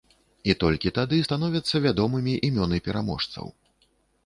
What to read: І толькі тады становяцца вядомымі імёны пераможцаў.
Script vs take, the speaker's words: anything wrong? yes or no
no